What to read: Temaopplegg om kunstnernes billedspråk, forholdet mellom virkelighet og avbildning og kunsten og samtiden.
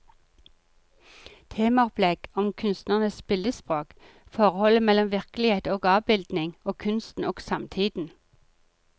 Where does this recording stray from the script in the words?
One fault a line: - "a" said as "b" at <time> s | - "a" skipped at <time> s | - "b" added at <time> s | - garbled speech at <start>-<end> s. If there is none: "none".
none